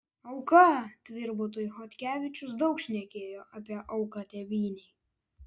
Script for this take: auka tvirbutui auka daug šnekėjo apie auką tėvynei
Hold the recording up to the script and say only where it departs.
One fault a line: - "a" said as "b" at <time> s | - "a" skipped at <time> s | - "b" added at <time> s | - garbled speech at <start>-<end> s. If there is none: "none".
- "auka" said as "chodkevičius" at 1.8 s